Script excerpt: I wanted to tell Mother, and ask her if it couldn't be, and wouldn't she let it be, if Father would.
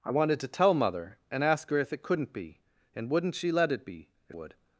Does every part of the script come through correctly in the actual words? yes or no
no